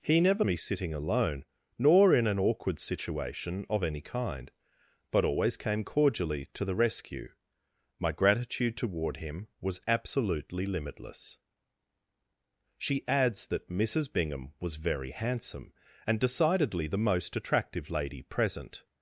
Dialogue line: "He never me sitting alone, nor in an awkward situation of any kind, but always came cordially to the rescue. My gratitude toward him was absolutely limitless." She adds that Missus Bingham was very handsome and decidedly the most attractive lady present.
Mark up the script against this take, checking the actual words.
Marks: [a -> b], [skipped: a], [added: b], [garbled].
"He never me sitting alone, nor in an awkward situation of any kind, but always came cordially to the rescue. My gratitude toward him was absolutely limitless." She adds that Missus Bingham was very handsome and decidedly the most attractive lady present.